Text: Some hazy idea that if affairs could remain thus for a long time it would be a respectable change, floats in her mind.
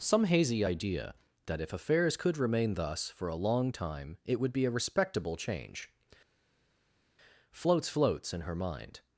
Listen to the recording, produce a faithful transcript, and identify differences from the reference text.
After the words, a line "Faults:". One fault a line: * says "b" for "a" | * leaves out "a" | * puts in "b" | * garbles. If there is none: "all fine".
Some hazy idea that if affairs could remain thus for a long time it would be a respectable change, floats floats in her mind.
Faults:
* puts in "floats"